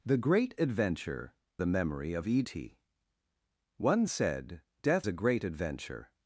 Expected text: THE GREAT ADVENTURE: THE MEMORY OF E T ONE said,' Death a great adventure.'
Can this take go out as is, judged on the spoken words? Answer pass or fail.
pass